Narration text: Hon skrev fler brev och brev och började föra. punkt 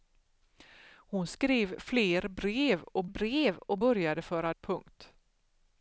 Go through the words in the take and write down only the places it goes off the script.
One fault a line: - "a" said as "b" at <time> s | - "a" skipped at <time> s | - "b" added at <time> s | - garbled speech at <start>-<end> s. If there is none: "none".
none